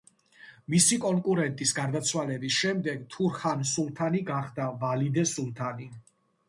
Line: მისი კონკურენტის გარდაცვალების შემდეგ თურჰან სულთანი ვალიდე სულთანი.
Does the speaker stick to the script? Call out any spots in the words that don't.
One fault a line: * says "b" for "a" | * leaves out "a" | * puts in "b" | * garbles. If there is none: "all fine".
* puts in "გახდა"